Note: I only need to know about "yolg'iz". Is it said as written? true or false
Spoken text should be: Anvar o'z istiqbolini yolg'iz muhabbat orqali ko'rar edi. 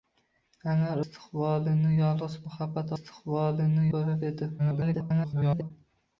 true